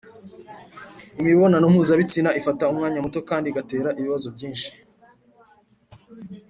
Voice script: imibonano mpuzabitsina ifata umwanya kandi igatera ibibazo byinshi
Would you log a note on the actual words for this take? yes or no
yes